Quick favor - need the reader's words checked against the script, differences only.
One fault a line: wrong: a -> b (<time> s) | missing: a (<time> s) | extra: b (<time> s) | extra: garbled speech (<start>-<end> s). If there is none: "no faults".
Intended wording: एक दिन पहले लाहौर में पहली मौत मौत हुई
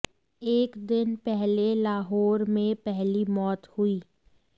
missing: मौत (3.7 s)